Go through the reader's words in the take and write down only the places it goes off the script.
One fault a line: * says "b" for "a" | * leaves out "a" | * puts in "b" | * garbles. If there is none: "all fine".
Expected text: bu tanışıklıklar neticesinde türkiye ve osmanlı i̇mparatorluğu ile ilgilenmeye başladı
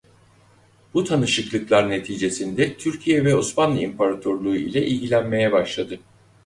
all fine